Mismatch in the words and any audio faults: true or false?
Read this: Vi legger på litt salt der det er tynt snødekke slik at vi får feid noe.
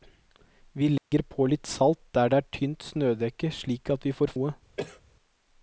true